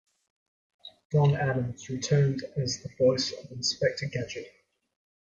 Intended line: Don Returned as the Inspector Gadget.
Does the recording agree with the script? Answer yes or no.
no